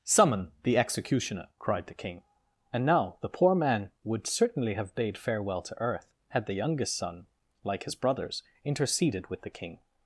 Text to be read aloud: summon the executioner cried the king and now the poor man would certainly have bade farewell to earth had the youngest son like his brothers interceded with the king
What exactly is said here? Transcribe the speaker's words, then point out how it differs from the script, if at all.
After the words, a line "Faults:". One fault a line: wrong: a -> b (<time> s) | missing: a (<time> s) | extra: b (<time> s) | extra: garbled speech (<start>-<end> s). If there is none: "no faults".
summon the executioner cried the king and now the poor man would certainly have bade farewell to earth had the youngest son like his brothers interceded with the king
Faults:
no faults